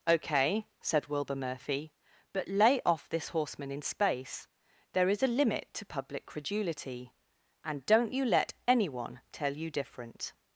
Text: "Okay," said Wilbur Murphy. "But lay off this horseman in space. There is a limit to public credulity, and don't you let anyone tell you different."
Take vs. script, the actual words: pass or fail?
pass